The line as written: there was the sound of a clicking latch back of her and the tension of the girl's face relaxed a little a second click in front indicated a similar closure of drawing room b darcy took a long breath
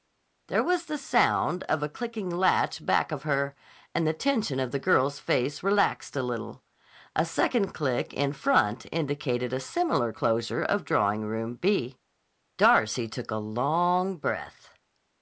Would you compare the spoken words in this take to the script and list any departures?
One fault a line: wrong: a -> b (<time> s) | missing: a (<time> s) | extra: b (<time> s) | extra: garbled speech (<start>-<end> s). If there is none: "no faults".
no faults